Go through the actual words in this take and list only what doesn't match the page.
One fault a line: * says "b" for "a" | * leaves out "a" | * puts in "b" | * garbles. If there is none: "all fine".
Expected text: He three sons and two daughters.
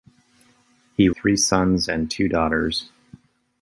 all fine